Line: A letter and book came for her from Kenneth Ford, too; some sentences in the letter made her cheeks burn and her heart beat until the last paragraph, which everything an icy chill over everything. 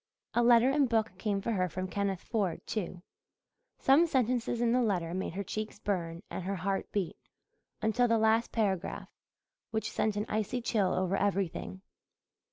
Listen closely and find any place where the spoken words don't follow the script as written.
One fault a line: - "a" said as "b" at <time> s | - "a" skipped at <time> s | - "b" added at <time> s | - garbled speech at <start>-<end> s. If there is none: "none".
- "everything" said as "sent" at 9.9 s